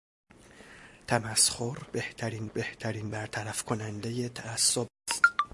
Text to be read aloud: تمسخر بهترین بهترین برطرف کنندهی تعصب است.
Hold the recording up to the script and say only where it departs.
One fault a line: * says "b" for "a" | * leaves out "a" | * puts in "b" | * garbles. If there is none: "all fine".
all fine